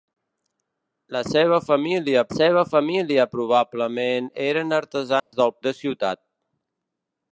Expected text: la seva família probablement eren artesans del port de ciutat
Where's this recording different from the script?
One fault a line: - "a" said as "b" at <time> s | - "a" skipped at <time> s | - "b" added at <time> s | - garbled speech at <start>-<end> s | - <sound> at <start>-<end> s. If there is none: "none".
- "seva família" added at 2.3 s
- dropout at 5.2-5.3 s
- "port" skipped at 5.5 s